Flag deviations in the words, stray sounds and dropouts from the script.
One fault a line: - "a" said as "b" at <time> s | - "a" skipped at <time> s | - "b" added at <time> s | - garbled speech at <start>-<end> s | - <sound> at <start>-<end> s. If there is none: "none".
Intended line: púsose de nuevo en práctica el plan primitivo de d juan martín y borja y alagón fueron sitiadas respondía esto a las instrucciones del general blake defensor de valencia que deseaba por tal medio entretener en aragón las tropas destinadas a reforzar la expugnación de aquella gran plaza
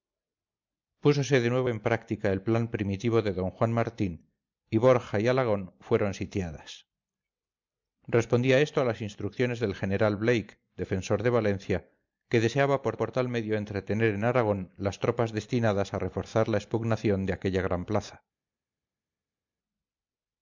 - "por" added at 13.0 s